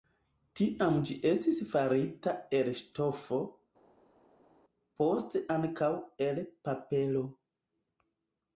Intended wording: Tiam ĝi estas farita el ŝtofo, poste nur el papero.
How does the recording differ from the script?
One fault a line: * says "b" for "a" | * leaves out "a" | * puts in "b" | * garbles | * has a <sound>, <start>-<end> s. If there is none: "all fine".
* says "estis" for "estas"
* says "ankaŭ" for "nur"